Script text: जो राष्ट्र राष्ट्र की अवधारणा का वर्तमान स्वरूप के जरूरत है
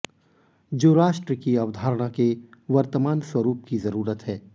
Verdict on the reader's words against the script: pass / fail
fail